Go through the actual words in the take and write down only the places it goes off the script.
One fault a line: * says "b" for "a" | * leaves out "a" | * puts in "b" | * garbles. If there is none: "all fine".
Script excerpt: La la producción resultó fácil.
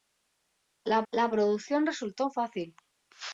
all fine